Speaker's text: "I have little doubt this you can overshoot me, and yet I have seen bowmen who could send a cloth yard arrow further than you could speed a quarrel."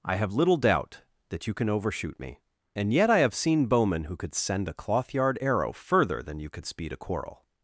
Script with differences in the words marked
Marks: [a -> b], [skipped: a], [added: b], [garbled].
"I have little doubt [this -> that] you can overshoot me, and yet I have seen bowmen who could send a cloth yard arrow further than you could speed a quarrel."